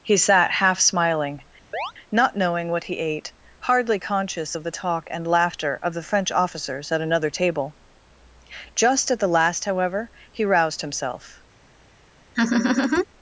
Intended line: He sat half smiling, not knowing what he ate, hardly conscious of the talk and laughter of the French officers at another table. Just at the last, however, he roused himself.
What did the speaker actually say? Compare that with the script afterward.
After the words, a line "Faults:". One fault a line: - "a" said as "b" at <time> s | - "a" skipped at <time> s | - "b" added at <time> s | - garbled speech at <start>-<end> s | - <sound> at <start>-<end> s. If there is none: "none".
He sat half smiling, not knowing what he ate, hardly conscious of the talk and laughter of the French officers at another table. Just at the last, however, he roused himself.
Faults:
- chirp at 1.7-1.9 s
- laugh at 12.3-13.0 s